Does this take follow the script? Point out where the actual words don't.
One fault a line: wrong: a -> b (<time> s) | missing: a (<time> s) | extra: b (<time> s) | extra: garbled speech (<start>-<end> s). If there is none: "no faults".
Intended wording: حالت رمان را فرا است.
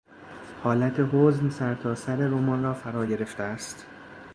extra: حزن سرتاسر (1.1 s)
extra: گرفته (3.0 s)